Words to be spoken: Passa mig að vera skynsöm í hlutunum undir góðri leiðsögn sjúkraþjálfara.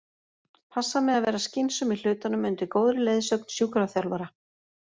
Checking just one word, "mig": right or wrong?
right